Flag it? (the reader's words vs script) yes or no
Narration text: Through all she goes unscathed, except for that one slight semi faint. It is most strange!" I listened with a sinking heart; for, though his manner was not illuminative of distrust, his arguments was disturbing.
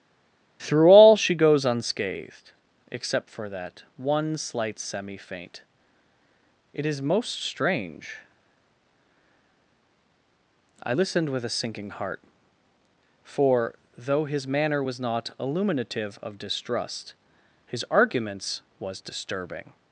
no